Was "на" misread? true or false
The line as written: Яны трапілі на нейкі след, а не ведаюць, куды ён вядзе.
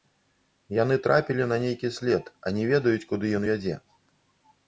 false